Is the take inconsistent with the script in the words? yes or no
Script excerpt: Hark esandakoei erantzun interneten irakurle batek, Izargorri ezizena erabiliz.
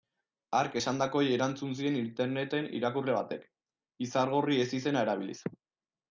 yes